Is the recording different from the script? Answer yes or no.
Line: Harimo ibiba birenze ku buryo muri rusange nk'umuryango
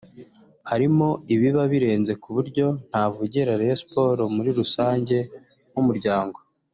yes